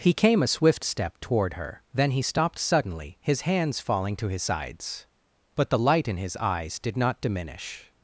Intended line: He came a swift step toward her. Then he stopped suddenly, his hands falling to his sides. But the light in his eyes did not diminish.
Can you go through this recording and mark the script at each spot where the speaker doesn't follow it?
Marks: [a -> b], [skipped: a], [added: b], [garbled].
He came a swift step toward her. Then he stopped suddenly, his hands falling to his sides. But the light in his eyes did not diminish.